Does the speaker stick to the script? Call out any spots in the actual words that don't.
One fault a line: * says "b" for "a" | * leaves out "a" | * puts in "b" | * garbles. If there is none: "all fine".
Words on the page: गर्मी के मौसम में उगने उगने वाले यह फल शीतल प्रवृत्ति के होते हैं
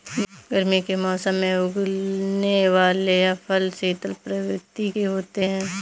* leaves out "उगने"